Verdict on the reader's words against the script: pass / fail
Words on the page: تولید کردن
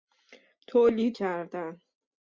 pass